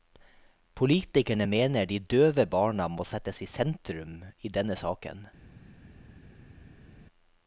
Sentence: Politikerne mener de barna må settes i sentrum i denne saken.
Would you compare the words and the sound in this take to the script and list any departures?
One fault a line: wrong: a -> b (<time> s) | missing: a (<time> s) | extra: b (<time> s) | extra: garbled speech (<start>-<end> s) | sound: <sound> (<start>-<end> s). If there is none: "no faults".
extra: døve (2.1 s)